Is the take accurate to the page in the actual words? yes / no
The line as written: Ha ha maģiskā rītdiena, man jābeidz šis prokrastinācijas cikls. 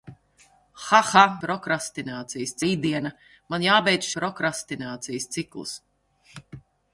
no